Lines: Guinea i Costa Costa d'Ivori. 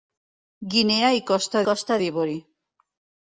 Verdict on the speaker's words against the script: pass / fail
pass